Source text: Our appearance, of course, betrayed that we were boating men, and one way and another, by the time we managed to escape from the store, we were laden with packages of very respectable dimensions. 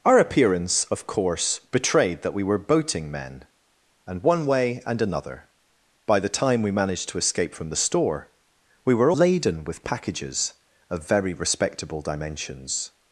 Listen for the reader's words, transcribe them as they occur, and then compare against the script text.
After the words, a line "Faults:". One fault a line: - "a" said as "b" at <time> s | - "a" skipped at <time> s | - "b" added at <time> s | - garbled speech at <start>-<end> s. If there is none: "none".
Our appearance, of course, betrayed that we were boating men, and one way and another, by the time we managed to escape from the store, we were laden with packages of very respectable dimensions.
Faults:
none